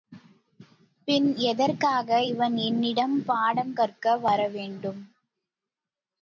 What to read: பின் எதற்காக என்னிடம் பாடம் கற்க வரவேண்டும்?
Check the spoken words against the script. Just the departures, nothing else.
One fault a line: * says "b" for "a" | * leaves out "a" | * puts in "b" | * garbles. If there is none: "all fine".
* puts in "இவன்"